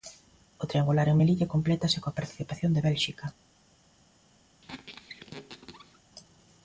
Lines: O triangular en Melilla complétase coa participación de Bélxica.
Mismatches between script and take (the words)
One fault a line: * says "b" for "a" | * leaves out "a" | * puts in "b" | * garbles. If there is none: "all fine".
all fine